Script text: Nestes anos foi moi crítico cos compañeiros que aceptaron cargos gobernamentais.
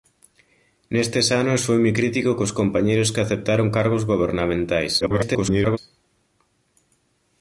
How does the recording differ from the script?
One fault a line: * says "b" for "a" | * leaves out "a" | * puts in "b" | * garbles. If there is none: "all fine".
* garbles